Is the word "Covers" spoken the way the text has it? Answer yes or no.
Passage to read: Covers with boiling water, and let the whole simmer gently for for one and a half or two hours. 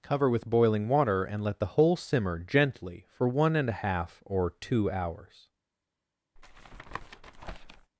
no